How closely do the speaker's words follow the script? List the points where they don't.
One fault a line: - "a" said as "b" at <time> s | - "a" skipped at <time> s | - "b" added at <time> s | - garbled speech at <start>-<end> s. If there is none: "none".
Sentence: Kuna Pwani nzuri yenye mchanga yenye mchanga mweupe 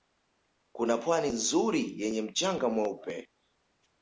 - "yenye mchanga" skipped at 2.7 s